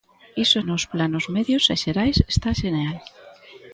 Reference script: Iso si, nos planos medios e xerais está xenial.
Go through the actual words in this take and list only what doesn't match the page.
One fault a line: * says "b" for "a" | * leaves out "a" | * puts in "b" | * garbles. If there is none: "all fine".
* leaves out "si"